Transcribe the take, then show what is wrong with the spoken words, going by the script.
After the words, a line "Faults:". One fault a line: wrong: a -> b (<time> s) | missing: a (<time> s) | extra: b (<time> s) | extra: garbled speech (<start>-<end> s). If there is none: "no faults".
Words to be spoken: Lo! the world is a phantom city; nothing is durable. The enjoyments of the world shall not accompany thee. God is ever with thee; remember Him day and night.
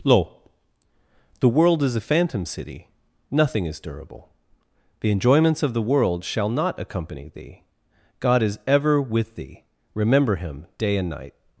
Lo! the world is a phantom city; nothing is durable. The enjoyments of the world shall not accompany thee. God is ever with thee; remember Him day and night.
Faults:
no faults